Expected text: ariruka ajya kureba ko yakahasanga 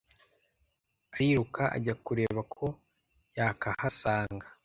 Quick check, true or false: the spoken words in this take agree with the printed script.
true